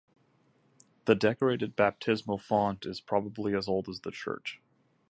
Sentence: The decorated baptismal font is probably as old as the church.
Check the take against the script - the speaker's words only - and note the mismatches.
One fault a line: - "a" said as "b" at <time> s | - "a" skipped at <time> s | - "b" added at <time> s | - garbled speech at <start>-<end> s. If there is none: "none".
none